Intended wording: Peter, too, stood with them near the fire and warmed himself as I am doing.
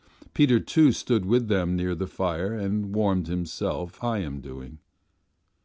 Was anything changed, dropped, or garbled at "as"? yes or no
yes